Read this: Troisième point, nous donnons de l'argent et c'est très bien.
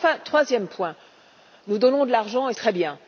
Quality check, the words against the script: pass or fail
fail